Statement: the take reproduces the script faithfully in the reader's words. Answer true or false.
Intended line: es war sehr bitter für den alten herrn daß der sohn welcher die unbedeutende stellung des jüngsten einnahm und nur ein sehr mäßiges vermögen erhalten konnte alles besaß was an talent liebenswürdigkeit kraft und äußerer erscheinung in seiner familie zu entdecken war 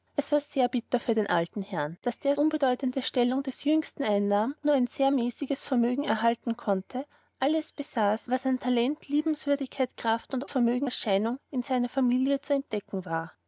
false